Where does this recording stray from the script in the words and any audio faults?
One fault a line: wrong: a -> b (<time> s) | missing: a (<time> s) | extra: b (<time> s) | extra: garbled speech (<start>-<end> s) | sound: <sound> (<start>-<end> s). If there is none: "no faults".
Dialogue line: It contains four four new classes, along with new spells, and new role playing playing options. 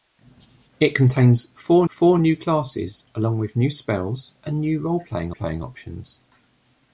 no faults